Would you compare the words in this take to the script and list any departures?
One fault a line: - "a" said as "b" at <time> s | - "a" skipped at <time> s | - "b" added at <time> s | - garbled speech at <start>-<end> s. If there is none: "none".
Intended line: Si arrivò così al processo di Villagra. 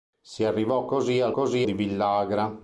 - "processo" said as "così" at 1.3 s